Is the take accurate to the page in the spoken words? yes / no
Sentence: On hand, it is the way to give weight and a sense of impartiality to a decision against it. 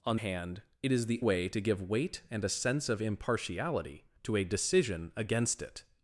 yes